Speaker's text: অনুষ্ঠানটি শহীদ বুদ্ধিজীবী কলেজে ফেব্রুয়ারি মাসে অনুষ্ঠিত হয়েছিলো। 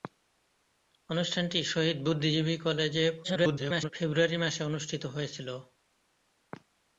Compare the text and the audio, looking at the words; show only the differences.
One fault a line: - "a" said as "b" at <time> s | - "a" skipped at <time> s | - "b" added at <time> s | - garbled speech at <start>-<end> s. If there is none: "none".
- garbled speech at 3.2-3.9 s